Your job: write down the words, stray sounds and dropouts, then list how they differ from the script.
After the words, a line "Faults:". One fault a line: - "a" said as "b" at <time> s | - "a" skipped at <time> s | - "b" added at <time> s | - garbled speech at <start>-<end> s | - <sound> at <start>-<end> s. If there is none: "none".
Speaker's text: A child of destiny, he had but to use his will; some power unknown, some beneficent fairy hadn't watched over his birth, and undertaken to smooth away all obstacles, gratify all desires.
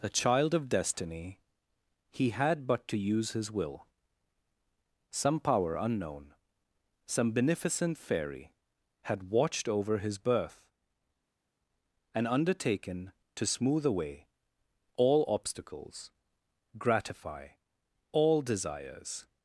A child of destiny, he had but to use his will; some power unknown, some beneficent fairy had watched over his birth, and undertaken to smooth away all obstacles, gratify all desires.
Faults:
- "hadn't" said as "had" at 9.0 s